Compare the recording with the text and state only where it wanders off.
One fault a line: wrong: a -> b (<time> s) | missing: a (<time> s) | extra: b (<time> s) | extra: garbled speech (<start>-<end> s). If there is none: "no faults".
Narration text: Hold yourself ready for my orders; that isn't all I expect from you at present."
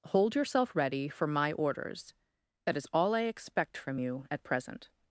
wrong: isn't -> is (2.8 s)